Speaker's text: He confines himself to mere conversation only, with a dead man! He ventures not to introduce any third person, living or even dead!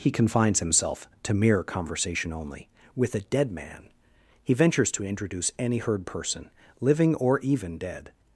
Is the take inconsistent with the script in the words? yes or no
yes